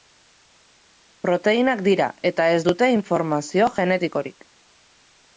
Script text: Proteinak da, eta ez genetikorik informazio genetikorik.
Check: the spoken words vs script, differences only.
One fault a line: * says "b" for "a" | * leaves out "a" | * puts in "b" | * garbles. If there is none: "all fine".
* says "dira" for "da"
* says "dute" for "genetikorik"